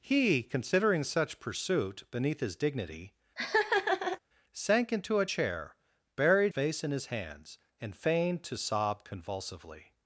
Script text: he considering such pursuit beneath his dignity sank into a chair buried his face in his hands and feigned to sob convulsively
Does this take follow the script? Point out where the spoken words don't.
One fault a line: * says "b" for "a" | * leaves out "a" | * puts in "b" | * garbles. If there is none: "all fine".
* leaves out "his"